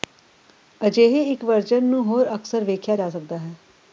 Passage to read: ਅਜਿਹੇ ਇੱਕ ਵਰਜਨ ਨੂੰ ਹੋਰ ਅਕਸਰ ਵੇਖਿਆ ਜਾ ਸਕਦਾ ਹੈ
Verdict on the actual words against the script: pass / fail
pass